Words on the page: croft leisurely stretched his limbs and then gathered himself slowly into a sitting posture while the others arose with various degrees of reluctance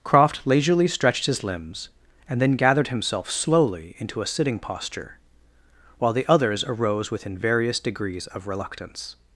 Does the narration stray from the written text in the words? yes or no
yes